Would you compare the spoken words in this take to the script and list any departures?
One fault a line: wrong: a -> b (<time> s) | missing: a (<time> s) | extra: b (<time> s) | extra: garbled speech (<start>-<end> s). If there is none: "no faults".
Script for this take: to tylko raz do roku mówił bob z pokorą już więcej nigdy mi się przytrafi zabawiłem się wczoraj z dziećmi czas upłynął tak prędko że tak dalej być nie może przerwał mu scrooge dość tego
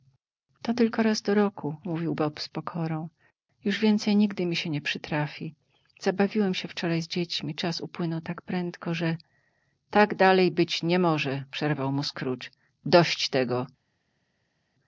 extra: nie (4.7 s)